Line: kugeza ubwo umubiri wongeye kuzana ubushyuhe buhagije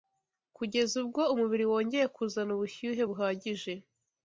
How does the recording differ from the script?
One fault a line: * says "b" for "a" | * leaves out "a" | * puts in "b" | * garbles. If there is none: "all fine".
all fine